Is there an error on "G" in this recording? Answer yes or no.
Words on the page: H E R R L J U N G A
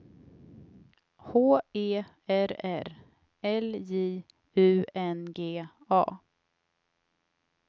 no